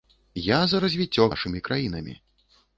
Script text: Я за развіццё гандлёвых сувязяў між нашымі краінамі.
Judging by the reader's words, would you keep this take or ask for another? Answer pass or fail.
fail